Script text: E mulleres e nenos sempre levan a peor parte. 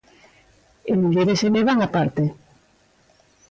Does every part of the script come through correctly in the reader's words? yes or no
no